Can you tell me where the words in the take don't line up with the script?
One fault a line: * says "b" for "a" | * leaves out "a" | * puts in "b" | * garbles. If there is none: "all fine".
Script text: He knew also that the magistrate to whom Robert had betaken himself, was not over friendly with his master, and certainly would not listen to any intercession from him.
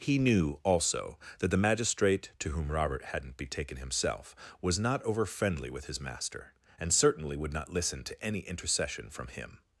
* says "hadn't" for "had"